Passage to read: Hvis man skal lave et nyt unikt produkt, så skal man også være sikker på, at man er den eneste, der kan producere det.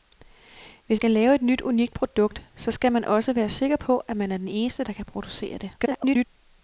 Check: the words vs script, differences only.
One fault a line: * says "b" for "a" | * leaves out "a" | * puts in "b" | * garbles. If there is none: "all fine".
* leaves out "man"
* garbles